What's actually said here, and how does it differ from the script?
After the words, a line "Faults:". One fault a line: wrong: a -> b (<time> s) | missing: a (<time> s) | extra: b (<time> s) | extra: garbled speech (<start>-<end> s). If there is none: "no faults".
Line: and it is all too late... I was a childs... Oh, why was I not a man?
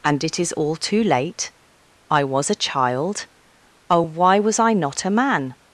and it is all too late... I was a child... Oh, why was I not a man?
Faults:
wrong: childs -> child (2.5 s)